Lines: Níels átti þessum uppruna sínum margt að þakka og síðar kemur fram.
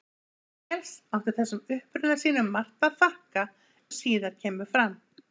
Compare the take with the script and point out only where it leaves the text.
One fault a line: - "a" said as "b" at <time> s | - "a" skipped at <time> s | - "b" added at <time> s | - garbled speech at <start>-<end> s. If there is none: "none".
none